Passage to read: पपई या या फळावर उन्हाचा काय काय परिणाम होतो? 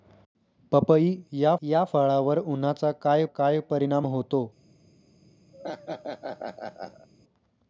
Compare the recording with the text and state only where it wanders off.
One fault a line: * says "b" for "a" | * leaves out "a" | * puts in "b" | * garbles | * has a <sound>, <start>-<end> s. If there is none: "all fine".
* has a laugh, 5.5-7.1 s